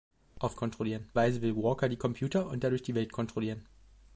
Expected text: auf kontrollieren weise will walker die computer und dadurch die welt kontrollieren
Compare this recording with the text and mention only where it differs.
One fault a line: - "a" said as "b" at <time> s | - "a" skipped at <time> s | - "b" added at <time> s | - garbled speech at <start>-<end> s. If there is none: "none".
none